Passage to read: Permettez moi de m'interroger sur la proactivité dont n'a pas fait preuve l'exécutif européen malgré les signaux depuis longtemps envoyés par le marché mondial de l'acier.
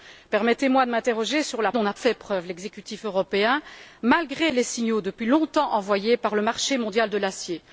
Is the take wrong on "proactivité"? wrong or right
wrong